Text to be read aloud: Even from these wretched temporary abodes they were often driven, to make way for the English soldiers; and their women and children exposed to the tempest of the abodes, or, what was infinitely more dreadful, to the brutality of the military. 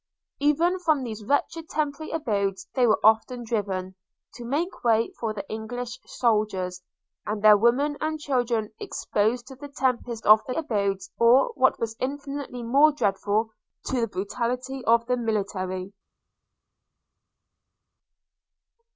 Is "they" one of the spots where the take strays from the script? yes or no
no